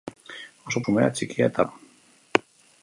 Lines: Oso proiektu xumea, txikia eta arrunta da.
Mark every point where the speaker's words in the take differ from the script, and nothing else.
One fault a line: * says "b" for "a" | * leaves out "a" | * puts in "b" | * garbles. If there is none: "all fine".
* leaves out "proiektu"
* leaves out "arrunta"